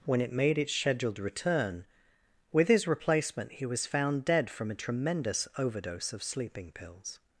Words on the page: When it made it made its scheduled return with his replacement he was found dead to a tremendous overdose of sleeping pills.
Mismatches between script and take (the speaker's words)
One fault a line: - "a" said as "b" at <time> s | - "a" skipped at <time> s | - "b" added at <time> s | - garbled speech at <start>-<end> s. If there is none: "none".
- "it made" skipped at 0.6 s
- "to" said as "from" at 4.5 s